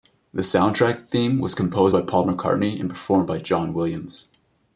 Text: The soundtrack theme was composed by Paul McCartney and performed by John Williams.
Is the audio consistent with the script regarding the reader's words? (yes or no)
yes